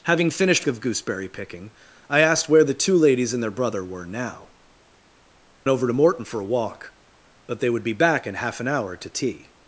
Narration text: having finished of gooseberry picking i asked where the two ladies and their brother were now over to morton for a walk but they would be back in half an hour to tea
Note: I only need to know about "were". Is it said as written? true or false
true